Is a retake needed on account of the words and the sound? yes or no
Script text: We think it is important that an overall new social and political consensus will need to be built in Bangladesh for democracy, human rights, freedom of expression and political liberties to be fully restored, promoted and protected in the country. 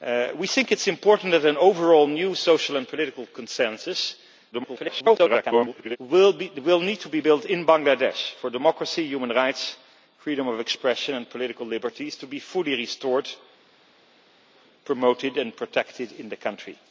yes